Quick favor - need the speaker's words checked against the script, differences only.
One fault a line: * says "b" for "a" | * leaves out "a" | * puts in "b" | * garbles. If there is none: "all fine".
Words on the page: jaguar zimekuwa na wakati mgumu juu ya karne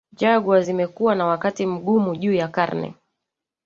all fine